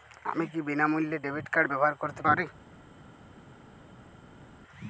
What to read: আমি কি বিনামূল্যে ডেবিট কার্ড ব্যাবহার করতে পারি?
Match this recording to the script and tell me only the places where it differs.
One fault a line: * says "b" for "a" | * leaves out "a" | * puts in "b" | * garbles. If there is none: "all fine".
all fine